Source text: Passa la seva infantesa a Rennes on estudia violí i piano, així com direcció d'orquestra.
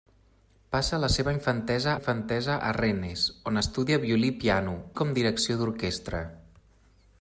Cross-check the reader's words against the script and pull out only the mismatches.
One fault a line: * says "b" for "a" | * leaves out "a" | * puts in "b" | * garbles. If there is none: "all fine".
* puts in "infantesa"
* leaves out "així"